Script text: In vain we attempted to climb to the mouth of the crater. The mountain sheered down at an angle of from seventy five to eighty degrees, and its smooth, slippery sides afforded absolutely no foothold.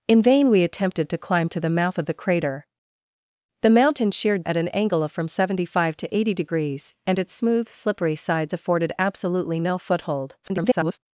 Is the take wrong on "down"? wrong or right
wrong